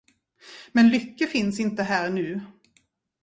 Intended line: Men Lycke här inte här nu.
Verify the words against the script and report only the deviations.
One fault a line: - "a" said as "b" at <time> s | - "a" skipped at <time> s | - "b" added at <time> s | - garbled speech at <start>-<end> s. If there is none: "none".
- "här" said as "finns" at 1.3 s